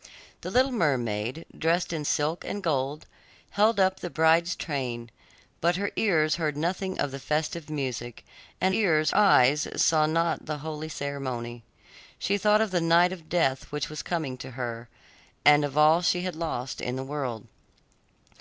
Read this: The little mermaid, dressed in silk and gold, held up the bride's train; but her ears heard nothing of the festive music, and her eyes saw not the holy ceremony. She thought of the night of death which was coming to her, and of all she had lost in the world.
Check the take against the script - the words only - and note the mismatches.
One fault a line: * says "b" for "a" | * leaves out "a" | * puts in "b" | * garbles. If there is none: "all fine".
* says "ears" for "her"